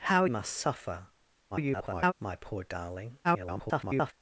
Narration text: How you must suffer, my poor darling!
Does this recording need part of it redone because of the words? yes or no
yes